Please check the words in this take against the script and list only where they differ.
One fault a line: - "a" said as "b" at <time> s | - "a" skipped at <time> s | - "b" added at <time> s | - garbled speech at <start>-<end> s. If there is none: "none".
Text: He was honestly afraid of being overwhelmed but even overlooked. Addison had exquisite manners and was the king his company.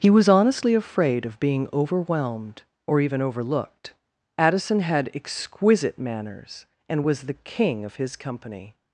- "but" said as "or" at 2.9 s
- "of" added at 7.8 s